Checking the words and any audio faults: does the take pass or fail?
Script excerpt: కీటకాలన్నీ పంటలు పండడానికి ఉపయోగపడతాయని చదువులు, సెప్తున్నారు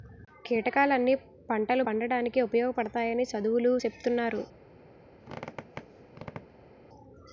fail